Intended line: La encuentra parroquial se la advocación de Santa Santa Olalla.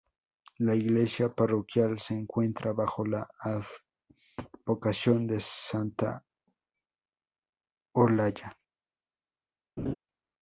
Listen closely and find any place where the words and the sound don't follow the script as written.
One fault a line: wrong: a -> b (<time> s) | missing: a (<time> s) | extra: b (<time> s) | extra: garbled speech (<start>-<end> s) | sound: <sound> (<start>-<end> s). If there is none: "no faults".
wrong: encuentra -> iglesia (0.7 s)
extra: encuentra bajo (2.1 s)
missing: Santa (6.2 s)
sound: laugh (9.8-9.9 s)